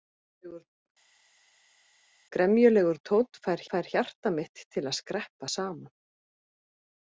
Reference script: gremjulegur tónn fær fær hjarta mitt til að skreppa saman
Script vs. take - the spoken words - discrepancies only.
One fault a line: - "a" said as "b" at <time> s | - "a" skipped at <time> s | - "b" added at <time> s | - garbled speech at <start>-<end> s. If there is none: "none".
none